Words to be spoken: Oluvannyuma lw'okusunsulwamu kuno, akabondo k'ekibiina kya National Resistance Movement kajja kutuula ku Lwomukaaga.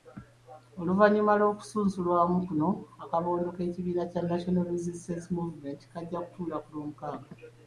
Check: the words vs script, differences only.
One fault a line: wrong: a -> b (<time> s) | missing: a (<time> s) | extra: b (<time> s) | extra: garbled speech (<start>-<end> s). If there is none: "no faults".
no faults